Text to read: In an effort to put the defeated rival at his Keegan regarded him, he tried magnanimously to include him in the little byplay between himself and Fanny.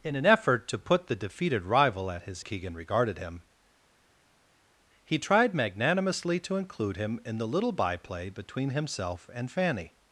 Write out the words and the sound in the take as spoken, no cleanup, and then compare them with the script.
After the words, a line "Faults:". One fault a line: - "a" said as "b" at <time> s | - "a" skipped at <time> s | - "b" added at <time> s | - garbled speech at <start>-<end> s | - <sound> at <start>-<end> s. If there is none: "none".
In an effort to put the defeated rival at his Keegan regarded him, he tried magnanimously to include him in the little byplay between himself and Fanny.
Faults:
none